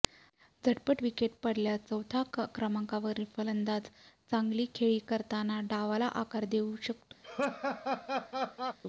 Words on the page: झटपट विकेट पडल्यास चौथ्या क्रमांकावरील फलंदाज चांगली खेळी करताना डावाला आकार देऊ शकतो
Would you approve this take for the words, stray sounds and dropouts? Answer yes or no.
no